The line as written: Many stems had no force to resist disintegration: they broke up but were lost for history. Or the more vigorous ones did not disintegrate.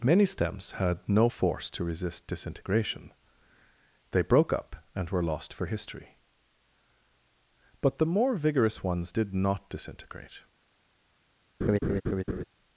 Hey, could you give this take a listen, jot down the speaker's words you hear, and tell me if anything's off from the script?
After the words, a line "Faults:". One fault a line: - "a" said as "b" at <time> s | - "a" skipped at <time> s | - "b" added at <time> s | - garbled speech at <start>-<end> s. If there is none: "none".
Many stems had no force to resist disintegration: they broke up and were lost for history. But the more vigorous ones did not disintegrate.
Faults:
- "but" said as "and" at 4.9 s
- "Or" said as "But" at 7.8 s